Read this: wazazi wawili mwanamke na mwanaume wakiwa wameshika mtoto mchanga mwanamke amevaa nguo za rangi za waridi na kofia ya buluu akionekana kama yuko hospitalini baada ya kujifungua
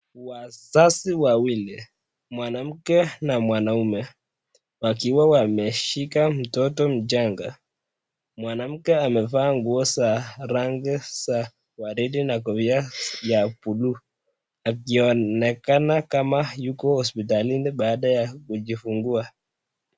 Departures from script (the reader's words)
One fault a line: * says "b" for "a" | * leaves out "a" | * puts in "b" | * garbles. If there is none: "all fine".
all fine